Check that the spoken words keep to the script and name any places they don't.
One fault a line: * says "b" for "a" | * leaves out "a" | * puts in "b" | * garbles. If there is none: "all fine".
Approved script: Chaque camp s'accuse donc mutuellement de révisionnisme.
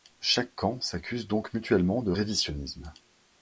all fine